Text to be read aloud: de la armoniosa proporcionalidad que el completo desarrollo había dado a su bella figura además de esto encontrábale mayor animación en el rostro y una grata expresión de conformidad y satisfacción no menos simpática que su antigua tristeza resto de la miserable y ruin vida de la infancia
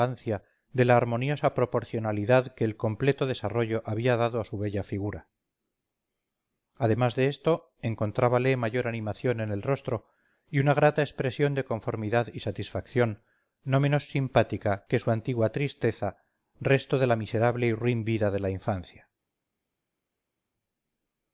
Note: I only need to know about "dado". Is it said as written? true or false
true